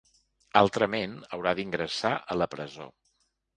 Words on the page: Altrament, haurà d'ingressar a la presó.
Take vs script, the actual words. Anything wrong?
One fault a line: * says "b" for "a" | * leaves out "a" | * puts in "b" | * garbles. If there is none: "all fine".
all fine